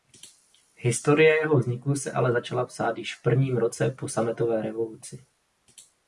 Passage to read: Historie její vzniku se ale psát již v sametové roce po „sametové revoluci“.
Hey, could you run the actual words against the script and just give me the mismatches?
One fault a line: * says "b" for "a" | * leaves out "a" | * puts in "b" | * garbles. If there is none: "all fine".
* says "jeho" for "její"
* puts in "začala"
* says "prvním" for "sametové"